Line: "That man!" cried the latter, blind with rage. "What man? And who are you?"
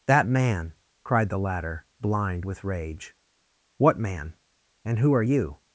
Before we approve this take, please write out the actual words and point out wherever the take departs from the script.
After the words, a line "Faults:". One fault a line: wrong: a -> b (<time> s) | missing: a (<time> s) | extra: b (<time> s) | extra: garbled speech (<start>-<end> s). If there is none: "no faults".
"That man!" cried the latter, blind with rage. "What man? And who are you?"
Faults:
no faults